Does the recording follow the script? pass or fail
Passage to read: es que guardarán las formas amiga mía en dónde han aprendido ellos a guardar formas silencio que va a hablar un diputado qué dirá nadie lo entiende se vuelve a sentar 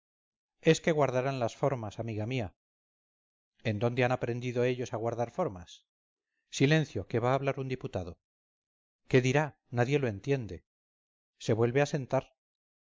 pass